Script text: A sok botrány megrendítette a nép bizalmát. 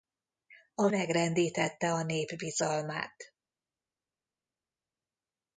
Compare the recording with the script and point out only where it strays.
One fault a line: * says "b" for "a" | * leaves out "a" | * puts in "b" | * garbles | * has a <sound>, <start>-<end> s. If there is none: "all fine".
* leaves out "sok botrány"